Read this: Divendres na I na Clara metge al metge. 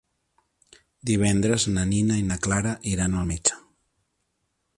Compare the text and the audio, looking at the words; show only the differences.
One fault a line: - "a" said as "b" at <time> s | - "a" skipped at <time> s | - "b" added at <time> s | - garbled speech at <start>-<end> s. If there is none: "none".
- "Nina" added at 1.9 s
- "metge" said as "iran" at 2.9 s